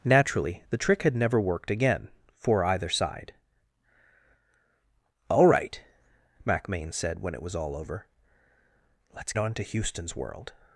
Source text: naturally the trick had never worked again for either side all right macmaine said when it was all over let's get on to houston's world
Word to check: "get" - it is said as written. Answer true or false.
false